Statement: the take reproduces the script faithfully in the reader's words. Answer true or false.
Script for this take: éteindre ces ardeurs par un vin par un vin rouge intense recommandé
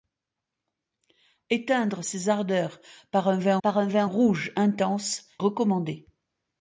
true